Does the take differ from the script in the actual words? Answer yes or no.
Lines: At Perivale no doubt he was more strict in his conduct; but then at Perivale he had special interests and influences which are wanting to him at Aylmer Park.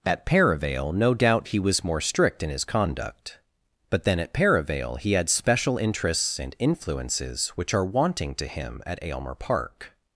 no